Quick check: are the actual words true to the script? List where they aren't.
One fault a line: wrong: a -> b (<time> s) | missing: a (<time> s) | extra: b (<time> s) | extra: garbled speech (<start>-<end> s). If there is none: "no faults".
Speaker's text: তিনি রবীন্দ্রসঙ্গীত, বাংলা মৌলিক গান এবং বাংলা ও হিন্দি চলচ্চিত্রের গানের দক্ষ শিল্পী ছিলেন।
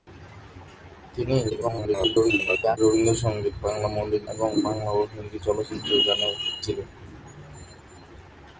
extra: garbled speech (1.5-2.8 s)
missing: গান (4.2 s)
missing: দক্ষ শিল্পী (6.3 s)